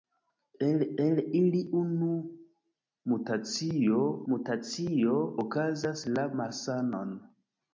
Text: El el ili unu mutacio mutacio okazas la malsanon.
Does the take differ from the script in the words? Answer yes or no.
no